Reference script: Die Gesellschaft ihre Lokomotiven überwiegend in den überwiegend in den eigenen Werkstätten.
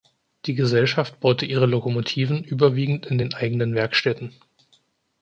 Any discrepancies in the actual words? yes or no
yes